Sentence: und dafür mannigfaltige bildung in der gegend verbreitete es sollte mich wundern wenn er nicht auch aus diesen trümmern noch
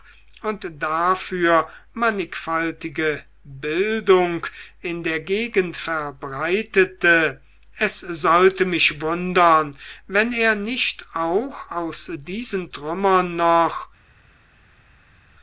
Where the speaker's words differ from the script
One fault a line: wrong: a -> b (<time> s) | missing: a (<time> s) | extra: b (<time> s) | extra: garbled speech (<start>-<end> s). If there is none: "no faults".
no faults